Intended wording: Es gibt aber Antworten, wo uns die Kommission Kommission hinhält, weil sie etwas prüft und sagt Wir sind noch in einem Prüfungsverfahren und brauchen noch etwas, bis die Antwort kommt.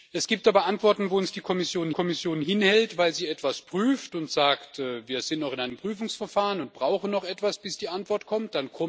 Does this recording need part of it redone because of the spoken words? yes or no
no